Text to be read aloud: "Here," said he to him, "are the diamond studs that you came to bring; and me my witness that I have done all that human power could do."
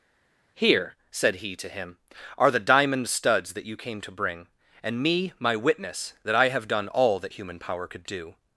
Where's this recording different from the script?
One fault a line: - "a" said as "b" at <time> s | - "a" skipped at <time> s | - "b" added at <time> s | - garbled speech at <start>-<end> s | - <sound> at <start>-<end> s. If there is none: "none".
none